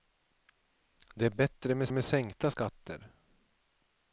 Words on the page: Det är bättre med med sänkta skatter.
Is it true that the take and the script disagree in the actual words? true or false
false